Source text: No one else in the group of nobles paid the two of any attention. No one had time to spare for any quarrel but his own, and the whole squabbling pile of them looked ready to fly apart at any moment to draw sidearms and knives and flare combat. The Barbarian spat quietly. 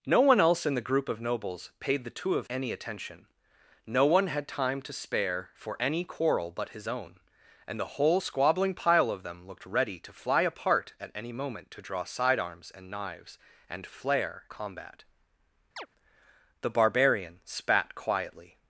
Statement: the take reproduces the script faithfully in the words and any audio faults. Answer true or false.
false